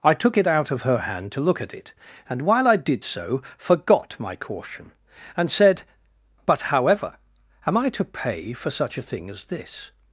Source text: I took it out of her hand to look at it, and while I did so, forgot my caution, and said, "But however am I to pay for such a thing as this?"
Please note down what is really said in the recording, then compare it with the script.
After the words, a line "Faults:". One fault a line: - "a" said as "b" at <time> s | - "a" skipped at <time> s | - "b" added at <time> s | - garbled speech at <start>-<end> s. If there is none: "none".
I took it out of her hand to look at it, and while I did so, forgot my caution, and said, "But however am I to pay for such a thing as this?"
Faults:
none